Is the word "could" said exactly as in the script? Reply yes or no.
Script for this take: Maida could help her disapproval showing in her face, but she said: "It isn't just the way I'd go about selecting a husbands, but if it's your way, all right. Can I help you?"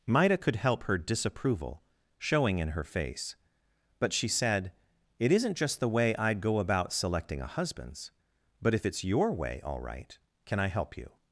yes